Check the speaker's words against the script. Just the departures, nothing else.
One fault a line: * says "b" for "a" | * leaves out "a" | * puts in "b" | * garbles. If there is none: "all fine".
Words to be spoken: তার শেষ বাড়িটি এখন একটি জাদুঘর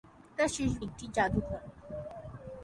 * leaves out "বাড়িটি এখন"